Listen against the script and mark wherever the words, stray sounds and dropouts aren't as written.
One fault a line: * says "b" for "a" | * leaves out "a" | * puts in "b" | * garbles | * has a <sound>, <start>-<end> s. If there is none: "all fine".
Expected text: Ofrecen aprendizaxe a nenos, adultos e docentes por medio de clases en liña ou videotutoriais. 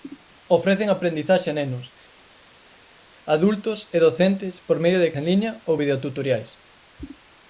* leaves out "clases"